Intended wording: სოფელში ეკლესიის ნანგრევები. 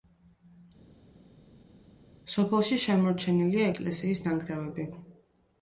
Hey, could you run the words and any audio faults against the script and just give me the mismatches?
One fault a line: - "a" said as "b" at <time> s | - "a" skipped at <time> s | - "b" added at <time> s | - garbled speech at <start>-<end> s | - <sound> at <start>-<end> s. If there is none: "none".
- "შემორჩენილია" added at 2.8 s